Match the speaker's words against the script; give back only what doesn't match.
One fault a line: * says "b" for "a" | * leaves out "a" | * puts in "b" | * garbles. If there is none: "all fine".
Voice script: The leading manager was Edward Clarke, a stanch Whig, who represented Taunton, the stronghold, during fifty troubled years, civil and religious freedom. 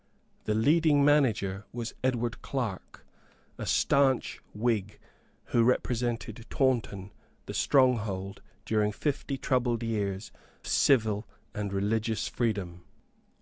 all fine